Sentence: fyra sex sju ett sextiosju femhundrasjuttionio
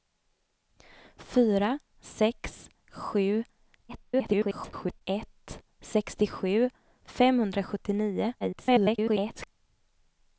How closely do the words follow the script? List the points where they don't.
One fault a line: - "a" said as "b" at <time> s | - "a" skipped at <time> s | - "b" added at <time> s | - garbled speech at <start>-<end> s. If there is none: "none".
- garbled speech at 3.9-5.0 s
- garbled speech at 8.4-9.5 s